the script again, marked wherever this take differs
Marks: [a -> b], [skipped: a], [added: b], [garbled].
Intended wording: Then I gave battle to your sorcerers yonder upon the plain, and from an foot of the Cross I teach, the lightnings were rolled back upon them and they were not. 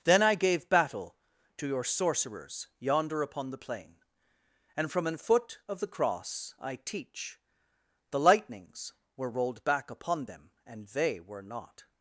Then I gave battle to your sorcerers yonder upon the plain, and from an foot of the Cross I teach, the lightnings were rolled back upon them and they were not.